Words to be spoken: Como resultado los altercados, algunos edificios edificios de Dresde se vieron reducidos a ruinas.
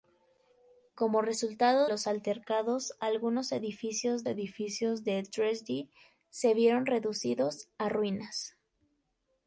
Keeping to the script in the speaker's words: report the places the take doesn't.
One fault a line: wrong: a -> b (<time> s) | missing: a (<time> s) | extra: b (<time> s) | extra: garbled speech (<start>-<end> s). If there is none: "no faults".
no faults